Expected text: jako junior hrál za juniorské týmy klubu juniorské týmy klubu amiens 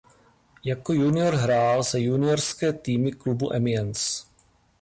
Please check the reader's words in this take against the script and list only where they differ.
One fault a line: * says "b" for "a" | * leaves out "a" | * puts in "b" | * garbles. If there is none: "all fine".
* leaves out "juniorské týmy klubu"